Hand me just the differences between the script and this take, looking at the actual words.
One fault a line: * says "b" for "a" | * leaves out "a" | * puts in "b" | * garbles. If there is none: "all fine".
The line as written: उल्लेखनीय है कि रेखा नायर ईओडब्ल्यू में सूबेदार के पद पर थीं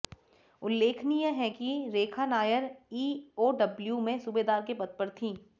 all fine